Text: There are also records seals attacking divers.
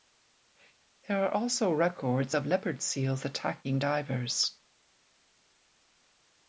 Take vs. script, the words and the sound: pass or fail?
fail